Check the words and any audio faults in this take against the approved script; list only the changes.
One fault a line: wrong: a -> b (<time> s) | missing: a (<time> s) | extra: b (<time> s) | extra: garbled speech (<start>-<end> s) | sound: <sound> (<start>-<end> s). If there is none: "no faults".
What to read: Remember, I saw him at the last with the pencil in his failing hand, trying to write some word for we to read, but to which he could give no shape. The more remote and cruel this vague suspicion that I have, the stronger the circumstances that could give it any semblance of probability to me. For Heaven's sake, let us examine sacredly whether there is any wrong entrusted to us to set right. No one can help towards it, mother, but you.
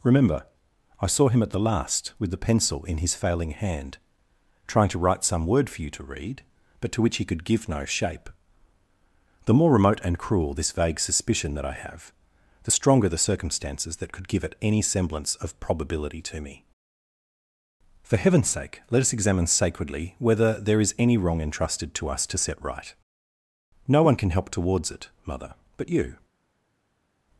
wrong: we -> you (5.8 s)